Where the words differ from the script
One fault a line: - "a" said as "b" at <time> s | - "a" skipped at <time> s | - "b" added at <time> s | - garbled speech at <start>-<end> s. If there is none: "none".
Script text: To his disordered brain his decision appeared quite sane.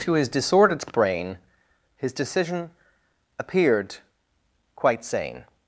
none